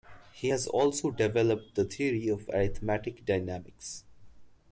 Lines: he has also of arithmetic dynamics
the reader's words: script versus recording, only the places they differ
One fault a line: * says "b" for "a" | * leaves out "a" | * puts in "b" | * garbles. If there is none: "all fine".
* puts in "developed the theory"